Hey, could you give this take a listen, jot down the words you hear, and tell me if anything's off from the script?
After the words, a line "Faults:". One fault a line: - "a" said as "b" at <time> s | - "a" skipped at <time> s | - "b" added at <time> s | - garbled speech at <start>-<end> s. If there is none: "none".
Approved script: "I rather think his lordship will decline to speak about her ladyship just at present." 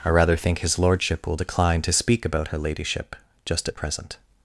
"I rather think his lordship will decline to speak about her ladyship just at present."
Faults:
none